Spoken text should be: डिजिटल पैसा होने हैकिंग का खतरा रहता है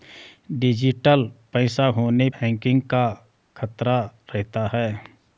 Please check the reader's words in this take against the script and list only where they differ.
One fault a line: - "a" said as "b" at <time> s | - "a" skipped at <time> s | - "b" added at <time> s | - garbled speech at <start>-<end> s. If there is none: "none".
none